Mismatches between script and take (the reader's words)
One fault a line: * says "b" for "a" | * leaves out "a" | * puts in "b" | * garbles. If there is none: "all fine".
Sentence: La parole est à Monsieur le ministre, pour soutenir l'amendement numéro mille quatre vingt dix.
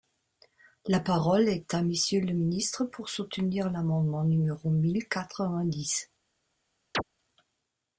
all fine